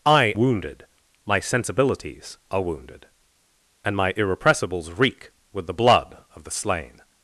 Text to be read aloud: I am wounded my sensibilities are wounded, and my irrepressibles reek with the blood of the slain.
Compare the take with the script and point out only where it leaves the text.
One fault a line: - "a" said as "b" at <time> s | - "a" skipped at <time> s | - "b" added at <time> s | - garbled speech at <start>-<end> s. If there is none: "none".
- "am" skipped at 0.3 s